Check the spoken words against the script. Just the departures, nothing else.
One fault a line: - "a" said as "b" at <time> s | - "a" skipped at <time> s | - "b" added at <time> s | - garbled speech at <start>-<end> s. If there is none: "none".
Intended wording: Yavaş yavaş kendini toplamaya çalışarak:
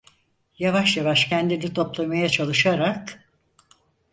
none